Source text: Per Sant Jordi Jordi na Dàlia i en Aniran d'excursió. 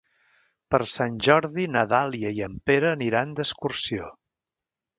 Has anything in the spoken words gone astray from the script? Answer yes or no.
yes